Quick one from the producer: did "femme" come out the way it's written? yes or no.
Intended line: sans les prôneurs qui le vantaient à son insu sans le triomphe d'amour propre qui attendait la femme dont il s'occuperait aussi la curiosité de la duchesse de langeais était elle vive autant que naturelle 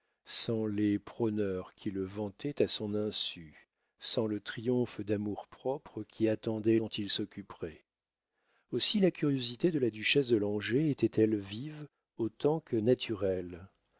no